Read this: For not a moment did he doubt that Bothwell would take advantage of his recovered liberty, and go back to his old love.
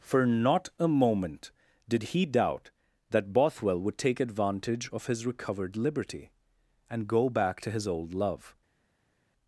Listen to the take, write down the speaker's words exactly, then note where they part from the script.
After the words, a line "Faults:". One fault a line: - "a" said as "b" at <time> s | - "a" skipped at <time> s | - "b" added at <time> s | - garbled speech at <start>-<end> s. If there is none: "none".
For not a moment did he doubt that Bothwell would take advantage of his recovered liberty, and go back to his old love.
Faults:
none